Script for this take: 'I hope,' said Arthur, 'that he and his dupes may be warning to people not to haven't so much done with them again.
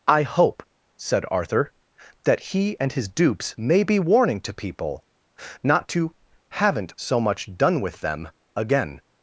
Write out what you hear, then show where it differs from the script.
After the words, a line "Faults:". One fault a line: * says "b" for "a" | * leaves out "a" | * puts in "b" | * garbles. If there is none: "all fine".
'I hope,' said Arthur, 'that he and his dupes may be warning to people not to haven't so much done with them again.
Faults:
all fine